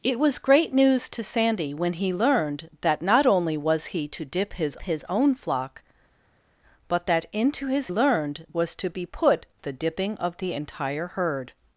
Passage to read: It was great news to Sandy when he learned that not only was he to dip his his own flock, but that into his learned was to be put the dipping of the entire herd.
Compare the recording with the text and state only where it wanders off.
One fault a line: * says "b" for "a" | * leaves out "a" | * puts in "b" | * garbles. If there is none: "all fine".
all fine